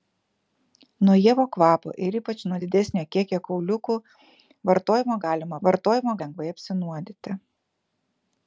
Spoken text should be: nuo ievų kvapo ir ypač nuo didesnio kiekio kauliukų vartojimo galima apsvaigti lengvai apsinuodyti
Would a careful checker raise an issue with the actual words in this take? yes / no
yes